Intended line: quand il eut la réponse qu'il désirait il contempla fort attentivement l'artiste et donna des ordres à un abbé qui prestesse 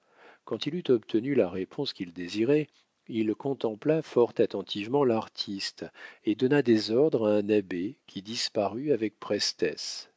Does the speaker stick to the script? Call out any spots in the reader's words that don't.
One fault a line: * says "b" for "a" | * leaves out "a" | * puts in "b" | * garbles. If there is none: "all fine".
* puts in "obtenu"
* puts in "disparut avec"